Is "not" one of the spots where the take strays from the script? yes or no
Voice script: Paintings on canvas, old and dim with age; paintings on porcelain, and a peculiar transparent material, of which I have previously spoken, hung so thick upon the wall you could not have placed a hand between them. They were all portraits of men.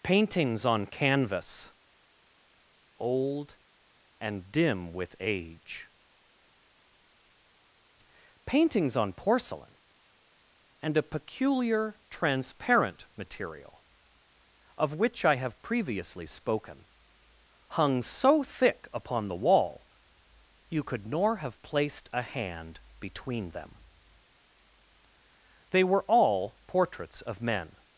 yes